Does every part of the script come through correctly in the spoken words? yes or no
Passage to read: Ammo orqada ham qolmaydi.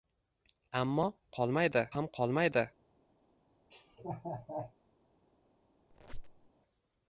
no